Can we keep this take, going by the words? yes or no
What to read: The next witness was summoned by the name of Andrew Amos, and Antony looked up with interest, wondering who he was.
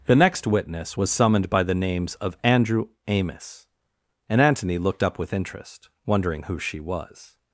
no